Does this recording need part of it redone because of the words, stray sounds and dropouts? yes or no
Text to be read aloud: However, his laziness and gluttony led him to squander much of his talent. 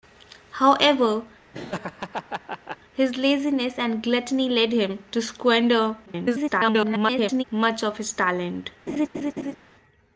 yes